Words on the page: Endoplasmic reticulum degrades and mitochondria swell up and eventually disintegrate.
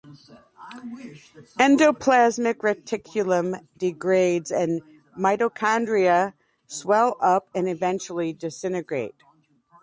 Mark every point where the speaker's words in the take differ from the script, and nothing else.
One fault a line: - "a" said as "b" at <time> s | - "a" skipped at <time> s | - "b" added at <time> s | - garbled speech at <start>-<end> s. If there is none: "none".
none